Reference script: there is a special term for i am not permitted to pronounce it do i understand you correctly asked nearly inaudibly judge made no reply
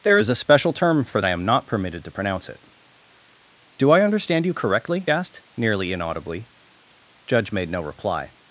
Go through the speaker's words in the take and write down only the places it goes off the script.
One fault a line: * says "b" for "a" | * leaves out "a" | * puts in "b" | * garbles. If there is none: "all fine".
all fine